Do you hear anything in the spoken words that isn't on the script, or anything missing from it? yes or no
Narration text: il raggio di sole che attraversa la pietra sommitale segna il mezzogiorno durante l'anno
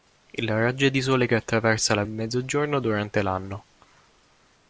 yes